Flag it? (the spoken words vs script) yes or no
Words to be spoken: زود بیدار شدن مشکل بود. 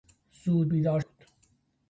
yes